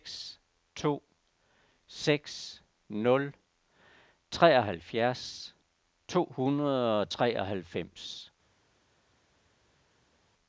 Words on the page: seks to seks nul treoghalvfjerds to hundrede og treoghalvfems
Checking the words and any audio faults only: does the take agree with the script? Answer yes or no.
yes